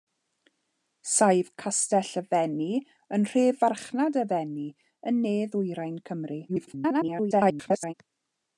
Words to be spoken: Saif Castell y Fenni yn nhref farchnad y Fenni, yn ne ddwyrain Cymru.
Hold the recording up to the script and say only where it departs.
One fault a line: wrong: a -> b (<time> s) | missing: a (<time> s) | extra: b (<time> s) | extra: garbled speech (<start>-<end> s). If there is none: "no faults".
extra: garbled speech (6.5-7.9 s)